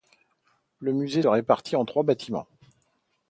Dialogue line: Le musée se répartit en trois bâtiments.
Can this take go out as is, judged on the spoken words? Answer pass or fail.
fail